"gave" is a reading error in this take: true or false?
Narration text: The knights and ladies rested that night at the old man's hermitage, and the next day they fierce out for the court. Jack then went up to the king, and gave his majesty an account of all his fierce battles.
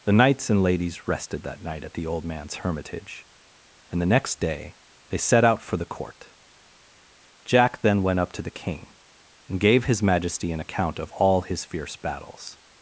false